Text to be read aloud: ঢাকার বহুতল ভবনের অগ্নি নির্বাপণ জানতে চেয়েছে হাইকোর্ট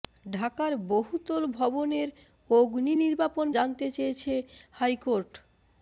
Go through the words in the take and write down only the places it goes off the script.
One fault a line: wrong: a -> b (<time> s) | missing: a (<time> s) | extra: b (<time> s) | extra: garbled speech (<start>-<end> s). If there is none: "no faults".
no faults